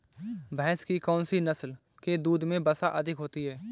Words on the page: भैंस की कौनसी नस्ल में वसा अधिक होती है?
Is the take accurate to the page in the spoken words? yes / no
no